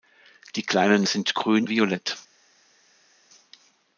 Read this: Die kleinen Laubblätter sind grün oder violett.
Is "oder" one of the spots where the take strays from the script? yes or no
yes